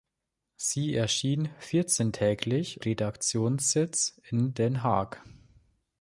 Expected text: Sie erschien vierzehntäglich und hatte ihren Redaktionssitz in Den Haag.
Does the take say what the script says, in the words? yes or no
no